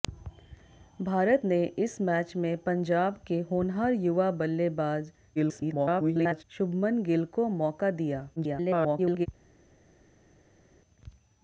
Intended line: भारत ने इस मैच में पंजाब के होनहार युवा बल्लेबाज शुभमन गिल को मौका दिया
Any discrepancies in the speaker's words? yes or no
yes